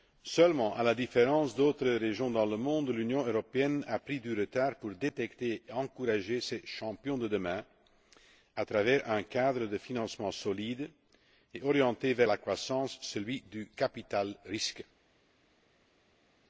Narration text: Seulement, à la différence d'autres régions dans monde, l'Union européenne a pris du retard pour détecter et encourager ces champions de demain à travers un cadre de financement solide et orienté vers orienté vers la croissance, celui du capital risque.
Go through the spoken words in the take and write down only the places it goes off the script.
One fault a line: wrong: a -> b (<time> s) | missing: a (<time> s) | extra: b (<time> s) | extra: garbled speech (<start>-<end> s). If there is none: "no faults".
extra: le (2.5 s)
missing: orienté vers (12.3 s)